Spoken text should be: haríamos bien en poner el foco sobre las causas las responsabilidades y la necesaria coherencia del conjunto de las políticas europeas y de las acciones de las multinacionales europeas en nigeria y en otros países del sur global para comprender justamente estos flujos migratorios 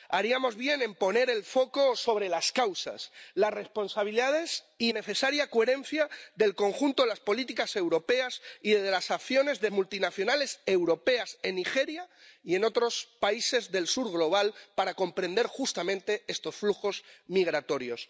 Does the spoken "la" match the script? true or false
false